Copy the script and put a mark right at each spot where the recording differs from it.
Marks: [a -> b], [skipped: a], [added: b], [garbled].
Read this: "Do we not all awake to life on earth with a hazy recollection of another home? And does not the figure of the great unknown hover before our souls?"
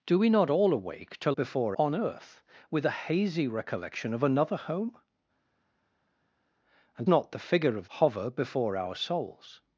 "Do we not all awake to [life -> before] on earth with a hazy recollection of another home? And [skipped: does] not the figure of [skipped: the great unknown] hover before our souls?"